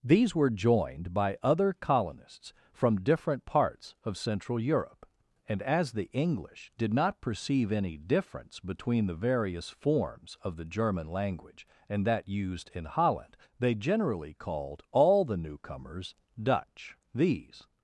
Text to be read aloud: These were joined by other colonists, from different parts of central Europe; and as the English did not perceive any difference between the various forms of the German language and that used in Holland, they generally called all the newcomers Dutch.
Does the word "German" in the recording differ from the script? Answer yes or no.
no